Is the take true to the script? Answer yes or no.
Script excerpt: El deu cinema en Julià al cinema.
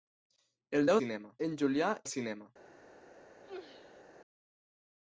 yes